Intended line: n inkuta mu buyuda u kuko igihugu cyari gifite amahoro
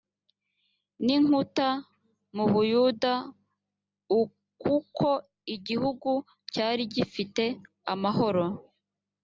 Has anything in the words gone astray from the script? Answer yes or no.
no